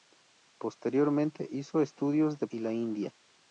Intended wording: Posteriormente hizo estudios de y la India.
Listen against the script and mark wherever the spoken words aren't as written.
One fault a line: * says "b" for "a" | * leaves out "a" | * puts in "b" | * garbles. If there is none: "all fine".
all fine